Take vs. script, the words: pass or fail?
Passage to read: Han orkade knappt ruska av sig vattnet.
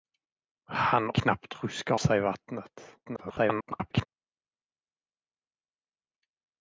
fail